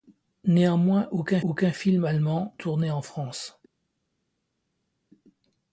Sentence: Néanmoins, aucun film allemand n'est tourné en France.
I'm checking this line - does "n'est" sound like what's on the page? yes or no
no